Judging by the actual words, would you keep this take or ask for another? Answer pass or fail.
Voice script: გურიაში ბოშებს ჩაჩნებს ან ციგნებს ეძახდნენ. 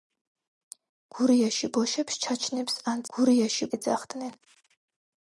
fail